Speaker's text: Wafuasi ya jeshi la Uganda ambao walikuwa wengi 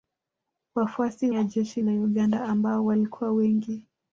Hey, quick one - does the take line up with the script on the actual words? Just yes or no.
yes